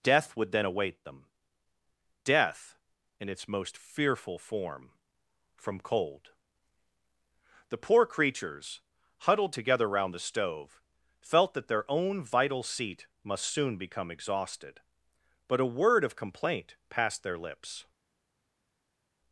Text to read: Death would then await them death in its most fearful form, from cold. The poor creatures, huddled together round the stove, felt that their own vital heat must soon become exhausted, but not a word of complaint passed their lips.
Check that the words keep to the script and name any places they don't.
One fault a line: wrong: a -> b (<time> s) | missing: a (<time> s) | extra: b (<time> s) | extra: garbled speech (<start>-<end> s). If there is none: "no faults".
wrong: heat -> seat (12.6 s)
missing: not (15.6 s)